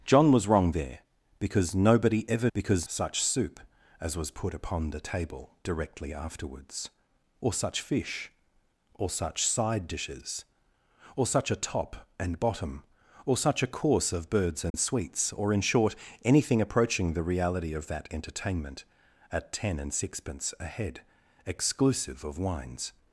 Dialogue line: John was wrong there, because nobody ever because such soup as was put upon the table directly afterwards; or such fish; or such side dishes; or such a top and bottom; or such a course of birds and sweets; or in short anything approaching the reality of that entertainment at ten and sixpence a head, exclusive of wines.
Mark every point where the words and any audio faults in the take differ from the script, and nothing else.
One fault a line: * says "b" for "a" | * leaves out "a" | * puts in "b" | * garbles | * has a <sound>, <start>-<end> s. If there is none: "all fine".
* has a dropout, 14.7-14.7 s